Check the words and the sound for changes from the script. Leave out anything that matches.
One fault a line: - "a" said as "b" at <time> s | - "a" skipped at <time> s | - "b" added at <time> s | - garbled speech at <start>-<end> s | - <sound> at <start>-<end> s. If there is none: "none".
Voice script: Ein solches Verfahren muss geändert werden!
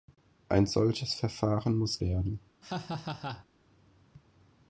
- "geändert" skipped at 2.0 s
- laugh at 2.6-3.5 s